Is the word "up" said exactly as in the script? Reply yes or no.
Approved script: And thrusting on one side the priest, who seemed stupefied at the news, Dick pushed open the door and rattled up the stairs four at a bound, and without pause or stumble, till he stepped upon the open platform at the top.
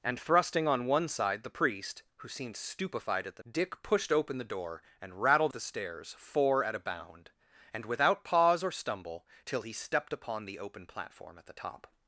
no